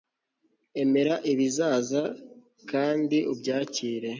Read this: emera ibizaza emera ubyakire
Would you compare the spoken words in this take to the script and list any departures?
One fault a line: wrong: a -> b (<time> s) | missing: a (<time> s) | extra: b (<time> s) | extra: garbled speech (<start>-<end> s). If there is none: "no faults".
wrong: emera -> kandi (2.7 s)